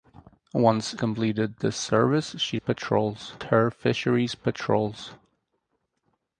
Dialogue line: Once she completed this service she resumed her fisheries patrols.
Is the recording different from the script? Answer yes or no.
yes